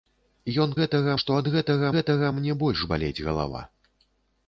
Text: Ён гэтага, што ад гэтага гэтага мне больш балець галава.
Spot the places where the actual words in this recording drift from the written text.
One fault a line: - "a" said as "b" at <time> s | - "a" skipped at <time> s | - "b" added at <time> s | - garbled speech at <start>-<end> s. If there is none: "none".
none